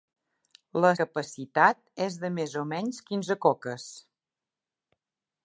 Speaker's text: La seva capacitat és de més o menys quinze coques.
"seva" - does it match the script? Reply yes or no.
no